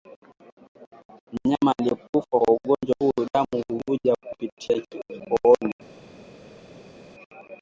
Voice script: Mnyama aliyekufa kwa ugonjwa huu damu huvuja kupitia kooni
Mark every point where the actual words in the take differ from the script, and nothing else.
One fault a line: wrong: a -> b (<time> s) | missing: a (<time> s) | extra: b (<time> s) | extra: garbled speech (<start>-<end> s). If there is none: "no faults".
no faults